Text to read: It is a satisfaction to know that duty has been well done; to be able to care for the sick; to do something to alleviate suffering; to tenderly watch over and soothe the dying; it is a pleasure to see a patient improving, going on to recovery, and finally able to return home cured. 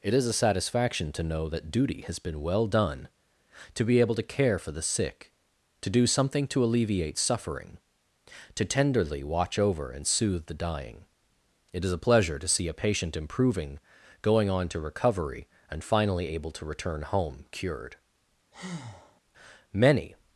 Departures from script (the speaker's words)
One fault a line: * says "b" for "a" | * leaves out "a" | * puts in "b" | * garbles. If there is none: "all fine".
* puts in "Many"